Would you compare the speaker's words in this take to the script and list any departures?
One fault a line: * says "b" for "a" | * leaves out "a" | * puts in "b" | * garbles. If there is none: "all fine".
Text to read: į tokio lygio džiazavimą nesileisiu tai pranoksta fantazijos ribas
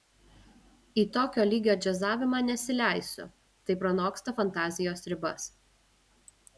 all fine